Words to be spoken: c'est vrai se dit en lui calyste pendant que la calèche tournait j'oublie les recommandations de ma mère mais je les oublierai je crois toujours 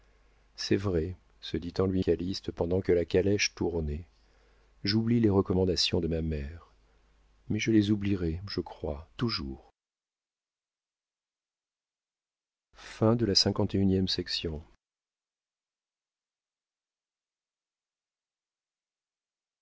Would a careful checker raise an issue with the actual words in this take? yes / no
no